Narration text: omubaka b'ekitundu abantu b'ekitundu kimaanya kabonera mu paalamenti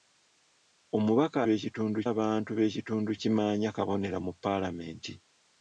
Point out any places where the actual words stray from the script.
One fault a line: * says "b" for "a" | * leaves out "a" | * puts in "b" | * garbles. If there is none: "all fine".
all fine